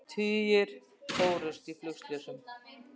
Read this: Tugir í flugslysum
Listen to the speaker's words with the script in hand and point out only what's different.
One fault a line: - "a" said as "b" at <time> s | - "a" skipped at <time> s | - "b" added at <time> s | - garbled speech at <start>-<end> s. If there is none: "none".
- "fórust" added at 1.2 s